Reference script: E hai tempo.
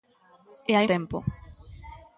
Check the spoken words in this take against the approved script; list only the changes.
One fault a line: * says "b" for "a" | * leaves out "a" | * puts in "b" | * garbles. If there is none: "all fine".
all fine